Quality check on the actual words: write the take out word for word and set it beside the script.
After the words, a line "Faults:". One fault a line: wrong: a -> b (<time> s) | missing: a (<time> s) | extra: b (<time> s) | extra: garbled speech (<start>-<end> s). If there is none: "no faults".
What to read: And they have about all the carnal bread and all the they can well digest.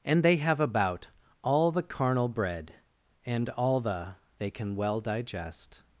And they have about all the carnal bread and all the they can well digest.
Faults:
no faults